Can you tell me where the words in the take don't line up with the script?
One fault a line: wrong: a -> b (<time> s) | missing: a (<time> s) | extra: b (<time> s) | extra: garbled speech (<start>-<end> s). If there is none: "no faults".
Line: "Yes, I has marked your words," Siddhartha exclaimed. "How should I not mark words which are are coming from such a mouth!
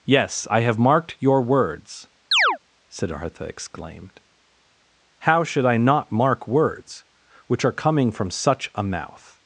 wrong: has -> have (0.6 s)
missing: are (7.8 s)